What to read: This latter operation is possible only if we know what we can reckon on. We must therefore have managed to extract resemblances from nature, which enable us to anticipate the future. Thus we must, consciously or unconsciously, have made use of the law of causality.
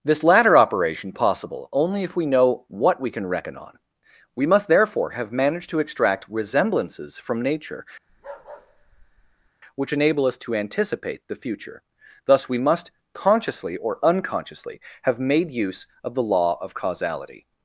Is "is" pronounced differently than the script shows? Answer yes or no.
yes